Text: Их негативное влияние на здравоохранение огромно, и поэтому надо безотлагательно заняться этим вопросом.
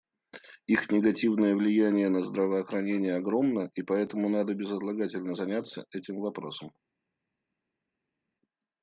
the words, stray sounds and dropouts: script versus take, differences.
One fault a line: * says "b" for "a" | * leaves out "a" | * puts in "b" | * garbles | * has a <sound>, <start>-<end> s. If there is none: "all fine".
all fine